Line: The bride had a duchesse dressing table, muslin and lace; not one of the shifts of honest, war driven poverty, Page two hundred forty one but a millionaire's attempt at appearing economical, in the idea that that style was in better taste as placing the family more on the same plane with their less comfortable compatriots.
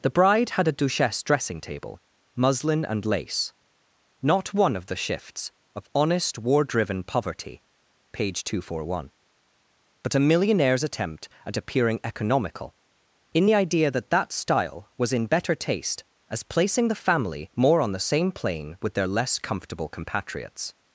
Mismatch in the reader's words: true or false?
false